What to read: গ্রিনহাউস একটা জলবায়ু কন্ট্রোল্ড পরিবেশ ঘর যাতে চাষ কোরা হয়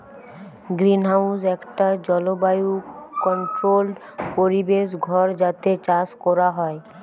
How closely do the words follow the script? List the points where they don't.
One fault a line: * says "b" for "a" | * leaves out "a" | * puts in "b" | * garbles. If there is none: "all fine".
all fine